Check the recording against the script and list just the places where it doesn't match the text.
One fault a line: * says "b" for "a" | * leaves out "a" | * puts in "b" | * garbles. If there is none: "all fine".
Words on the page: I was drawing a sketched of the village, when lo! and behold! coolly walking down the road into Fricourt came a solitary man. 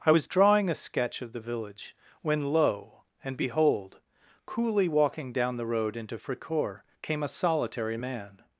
* says "sketch" for "sketched"